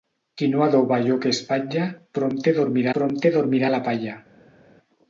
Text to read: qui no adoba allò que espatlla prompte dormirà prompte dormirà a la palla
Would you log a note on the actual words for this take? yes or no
no